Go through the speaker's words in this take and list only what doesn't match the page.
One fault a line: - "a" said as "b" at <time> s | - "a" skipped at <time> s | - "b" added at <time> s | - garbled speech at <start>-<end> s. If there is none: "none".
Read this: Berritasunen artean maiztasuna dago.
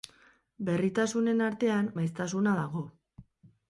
none